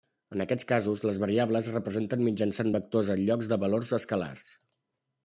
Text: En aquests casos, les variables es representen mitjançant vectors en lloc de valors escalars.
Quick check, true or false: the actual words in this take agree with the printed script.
true